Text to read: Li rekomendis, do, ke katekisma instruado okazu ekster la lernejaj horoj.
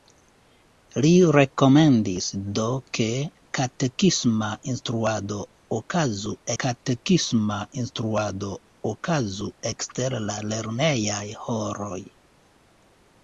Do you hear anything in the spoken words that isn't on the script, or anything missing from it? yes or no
yes